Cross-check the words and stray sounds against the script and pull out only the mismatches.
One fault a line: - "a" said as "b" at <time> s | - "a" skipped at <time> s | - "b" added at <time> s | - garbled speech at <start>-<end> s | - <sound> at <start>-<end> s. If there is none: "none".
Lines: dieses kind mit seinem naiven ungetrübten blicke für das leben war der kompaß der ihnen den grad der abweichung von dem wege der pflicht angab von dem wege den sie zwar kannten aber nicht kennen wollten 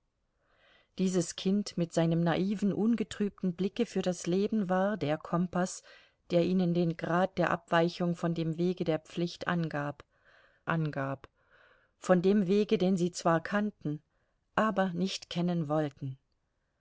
- "angab" added at 10.7 s